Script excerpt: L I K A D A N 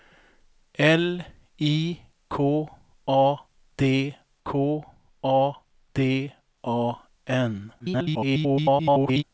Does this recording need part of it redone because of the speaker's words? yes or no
yes